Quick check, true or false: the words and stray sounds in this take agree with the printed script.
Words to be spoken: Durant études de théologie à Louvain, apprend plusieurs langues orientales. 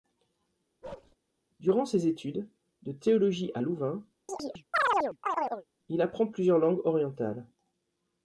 false